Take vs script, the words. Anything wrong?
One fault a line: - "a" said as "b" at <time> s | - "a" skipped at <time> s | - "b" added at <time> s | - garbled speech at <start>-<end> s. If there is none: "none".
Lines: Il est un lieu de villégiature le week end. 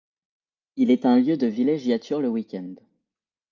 none